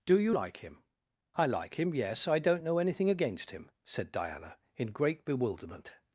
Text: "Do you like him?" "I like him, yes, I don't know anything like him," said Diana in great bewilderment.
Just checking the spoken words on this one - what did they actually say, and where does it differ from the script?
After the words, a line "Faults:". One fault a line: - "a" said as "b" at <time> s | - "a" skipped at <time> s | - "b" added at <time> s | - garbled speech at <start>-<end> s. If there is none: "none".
"Do you like him?" "I like him, yes, I don't know anything against him," said Diana in great bewilderment.
Faults:
- "like" said as "against" at 3.1 s